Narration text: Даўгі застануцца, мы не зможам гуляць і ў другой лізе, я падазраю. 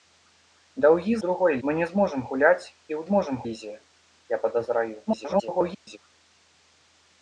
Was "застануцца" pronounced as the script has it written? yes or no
no